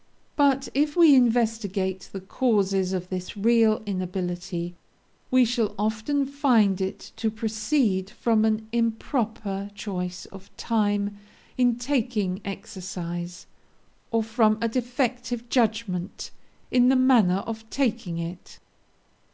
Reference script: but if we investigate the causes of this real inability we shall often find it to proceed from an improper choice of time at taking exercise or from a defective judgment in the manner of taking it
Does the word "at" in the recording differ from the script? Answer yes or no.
yes